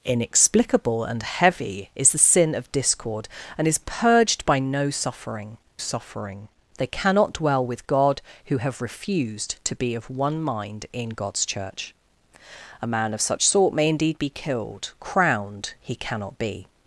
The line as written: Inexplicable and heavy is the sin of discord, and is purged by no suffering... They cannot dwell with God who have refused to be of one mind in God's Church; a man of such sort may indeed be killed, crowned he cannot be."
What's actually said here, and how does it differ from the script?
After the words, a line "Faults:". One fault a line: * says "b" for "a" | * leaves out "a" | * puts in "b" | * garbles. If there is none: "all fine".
Inexplicable and heavy is the sin of discord, and is purged by no suffering suffering... They cannot dwell with God who have refused to be of one mind in God's Church; a man of such sort may indeed be killed, crowned he cannot be."
Faults:
* puts in "suffering"